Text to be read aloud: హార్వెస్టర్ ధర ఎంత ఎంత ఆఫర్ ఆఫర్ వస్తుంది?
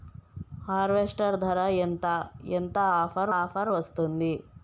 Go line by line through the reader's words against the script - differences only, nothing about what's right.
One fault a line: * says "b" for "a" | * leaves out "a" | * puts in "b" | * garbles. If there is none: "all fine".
all fine